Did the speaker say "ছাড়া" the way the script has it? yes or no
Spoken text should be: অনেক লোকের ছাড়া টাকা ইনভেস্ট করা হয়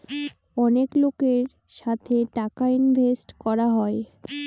no